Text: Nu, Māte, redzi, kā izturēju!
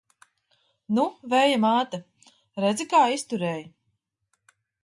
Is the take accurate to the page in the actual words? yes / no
no